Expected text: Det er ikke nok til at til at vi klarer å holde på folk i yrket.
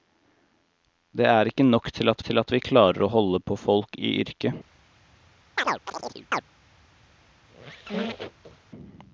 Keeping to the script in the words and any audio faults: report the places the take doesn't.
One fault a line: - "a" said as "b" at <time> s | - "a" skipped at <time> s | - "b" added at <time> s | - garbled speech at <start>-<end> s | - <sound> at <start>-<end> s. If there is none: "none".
- chirp at 5.6-6.4 s
- squeak at 7.4-8.7 s